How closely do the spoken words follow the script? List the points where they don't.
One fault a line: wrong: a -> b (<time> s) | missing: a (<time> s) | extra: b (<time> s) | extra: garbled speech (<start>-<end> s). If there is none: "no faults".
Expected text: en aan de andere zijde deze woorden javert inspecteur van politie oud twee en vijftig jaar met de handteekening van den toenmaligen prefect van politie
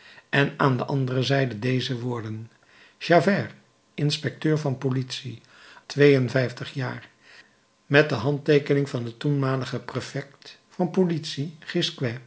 missing: oud (5.4 s)